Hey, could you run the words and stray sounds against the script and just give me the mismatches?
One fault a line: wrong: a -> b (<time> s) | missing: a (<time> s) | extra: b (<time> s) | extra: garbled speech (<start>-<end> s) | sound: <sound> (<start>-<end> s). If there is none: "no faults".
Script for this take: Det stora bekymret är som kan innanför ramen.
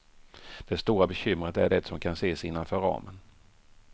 extra: det (1.7 s)
extra: ses (2.1 s)